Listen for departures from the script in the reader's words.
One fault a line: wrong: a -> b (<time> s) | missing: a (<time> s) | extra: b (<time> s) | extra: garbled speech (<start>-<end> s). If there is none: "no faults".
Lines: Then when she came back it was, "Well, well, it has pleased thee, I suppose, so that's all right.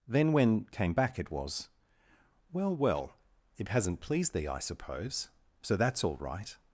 missing: she (0.7 s)
wrong: has -> hasn't (3.7 s)